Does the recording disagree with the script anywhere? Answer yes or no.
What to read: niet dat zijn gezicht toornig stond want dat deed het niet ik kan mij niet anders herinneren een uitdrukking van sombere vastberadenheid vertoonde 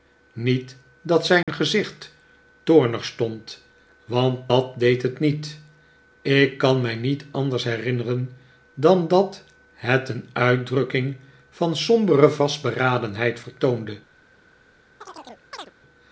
yes